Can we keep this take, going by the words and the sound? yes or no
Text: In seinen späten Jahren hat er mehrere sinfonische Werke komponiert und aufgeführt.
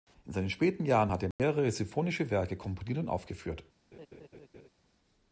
no